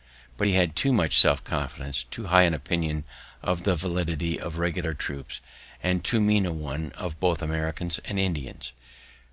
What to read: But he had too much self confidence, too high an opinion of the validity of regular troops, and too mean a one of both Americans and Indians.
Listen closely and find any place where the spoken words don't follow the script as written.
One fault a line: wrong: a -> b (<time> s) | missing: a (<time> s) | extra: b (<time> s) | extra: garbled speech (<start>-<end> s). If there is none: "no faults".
no faults